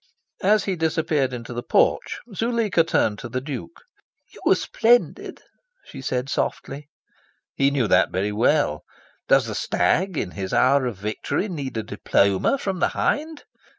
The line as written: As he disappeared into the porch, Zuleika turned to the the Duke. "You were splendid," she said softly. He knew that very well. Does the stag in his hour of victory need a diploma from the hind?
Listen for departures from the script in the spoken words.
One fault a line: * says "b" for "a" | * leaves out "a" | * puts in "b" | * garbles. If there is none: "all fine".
* leaves out "the"